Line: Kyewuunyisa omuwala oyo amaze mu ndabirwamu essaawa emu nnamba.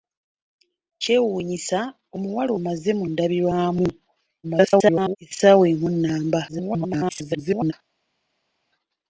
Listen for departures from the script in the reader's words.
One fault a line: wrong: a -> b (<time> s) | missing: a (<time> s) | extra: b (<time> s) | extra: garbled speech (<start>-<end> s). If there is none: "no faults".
missing: oyo (2.5 s)
extra: garbled speech (4.4-5.2 s)
extra: garbled speech (6.5-7.7 s)